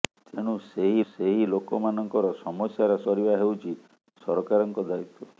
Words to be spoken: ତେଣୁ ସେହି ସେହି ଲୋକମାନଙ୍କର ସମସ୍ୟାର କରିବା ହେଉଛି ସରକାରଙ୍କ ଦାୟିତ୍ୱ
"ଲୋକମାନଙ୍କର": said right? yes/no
yes